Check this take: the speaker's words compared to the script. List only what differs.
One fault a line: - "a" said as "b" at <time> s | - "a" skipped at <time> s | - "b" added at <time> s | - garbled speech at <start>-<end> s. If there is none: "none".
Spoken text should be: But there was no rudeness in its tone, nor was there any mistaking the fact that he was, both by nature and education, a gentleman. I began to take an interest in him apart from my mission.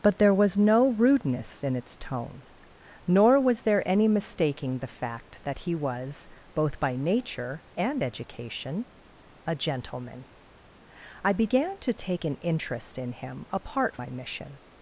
- "from" skipped at 14.0 s